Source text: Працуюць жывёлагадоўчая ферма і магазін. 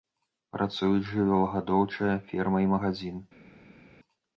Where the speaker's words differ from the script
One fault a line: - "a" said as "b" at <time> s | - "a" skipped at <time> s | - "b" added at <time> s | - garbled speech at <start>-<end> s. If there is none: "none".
none